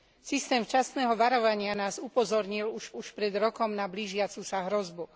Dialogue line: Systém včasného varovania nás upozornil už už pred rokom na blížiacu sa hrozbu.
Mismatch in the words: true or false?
false